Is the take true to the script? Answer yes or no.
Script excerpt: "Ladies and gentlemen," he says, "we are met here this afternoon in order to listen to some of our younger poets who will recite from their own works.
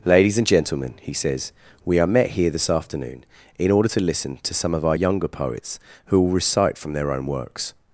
yes